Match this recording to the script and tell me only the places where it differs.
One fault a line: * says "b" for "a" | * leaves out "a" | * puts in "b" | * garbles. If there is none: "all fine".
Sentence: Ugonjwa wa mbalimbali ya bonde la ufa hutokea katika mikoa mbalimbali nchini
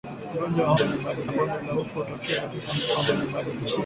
all fine